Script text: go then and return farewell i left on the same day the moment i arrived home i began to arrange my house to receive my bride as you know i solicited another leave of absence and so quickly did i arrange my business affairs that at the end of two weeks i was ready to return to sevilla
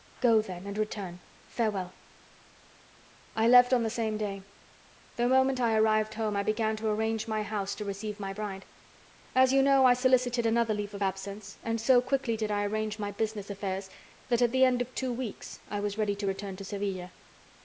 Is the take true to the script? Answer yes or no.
yes